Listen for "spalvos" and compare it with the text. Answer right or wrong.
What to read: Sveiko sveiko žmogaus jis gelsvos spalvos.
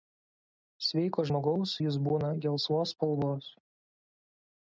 right